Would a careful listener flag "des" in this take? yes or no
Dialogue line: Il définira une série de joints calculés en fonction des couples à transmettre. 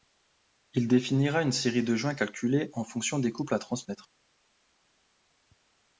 no